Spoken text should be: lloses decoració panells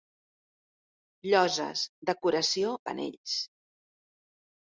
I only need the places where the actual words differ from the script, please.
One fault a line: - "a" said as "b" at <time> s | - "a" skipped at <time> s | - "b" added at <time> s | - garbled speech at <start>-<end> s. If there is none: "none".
none